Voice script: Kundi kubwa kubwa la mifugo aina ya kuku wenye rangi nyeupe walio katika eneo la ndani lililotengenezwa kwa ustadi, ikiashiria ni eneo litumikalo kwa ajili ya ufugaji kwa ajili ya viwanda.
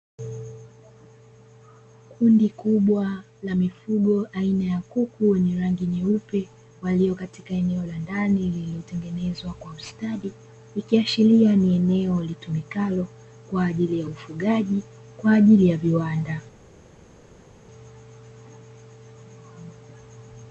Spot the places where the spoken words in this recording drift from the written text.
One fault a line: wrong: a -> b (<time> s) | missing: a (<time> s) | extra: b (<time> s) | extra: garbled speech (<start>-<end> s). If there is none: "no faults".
missing: kubwa (3.2 s)